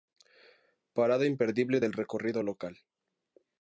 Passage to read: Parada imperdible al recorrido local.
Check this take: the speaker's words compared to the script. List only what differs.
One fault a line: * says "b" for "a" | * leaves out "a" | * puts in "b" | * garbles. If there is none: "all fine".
* says "del" for "al"